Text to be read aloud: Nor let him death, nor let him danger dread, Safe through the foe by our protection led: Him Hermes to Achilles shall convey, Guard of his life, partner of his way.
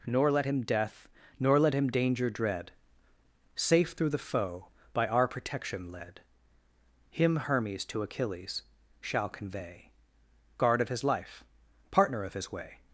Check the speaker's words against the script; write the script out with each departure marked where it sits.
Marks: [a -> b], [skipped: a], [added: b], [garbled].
Nor let him death, nor let him danger dread, Safe through the foe by our protection led: Him Hermes to Achilles shall convey, Guard of his life, partner of his way.